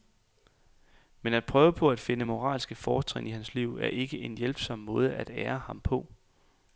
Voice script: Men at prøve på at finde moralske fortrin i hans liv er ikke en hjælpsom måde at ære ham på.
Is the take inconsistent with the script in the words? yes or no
no